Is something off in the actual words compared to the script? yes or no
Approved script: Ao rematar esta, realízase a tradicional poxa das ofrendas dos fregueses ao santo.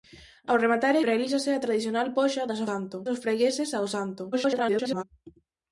yes